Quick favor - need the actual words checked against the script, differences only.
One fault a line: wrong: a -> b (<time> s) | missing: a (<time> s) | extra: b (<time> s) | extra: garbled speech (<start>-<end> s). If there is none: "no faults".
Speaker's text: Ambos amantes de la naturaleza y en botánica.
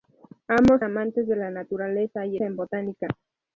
no faults